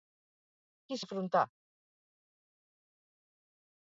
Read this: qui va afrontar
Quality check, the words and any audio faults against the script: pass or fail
pass